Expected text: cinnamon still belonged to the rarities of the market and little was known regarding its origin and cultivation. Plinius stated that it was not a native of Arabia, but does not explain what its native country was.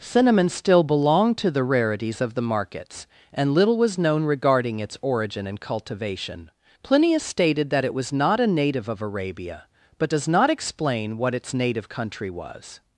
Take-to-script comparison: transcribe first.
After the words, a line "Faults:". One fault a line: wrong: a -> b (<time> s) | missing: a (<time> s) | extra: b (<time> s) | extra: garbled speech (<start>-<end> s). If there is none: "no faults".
cinnamon still belonged to the rarities of the markets and little was known regarding its origin and cultivation. Plinius stated that it was not a native of Arabia, but does not explain what its native country was.
Faults:
wrong: market -> markets (2.4 s)